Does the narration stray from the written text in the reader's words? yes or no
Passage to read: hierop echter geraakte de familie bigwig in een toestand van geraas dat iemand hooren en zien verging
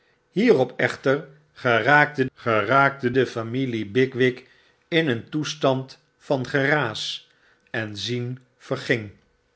yes